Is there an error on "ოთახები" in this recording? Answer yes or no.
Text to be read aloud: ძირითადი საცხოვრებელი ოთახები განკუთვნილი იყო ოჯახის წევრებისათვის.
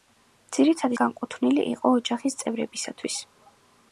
yes